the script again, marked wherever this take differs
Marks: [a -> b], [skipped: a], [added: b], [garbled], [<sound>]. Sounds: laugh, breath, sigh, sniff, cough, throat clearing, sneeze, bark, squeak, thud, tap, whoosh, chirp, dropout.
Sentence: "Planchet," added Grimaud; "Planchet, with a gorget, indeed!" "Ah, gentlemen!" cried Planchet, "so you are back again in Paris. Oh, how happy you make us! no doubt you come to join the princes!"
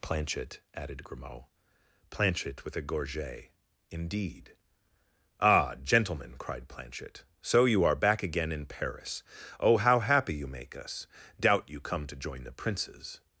"Planchet," added Grimaud; "Planchet, with a gorget, indeed!" "Ah, gentlemen!" cried Planchet, "so you are back again in Paris. Oh, how happy you make us! [skipped: no] doubt you come to join the princes!"